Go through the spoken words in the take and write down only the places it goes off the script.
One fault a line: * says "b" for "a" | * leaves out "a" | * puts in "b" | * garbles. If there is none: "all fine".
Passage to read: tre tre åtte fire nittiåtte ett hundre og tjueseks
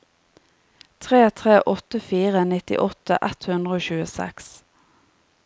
all fine